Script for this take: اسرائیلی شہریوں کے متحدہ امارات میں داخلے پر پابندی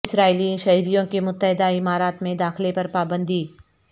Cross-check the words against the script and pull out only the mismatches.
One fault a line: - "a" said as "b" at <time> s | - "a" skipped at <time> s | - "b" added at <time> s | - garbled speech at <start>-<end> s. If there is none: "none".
none